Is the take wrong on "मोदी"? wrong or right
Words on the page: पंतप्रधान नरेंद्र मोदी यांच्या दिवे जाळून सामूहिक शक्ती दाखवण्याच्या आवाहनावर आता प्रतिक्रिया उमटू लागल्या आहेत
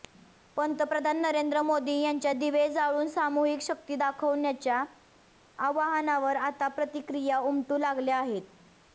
right